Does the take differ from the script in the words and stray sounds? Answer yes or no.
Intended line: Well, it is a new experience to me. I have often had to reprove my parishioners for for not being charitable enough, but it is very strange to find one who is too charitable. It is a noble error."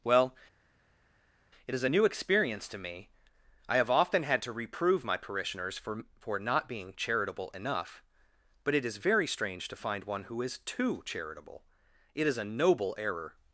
no